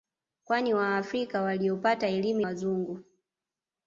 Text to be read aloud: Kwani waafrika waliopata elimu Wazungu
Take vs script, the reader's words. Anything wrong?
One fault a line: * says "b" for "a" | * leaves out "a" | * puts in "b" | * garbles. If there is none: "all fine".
all fine